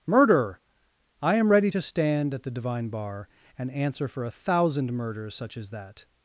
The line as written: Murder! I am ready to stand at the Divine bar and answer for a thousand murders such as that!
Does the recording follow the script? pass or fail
pass